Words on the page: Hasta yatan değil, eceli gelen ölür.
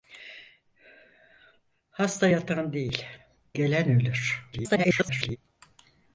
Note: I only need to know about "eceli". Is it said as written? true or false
false